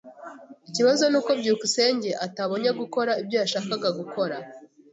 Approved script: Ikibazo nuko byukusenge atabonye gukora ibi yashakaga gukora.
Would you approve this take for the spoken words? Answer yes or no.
no